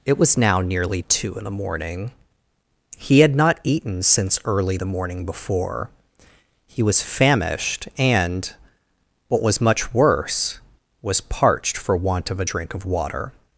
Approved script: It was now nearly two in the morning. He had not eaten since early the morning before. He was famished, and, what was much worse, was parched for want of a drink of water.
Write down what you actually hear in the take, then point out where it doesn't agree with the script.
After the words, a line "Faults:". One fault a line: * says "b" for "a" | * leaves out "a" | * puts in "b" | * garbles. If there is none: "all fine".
It was now nearly two in the morning. He had not eaten since early the morning before. He was famished, and, what was much worse, was parched for want of a drink of water.
Faults:
all fine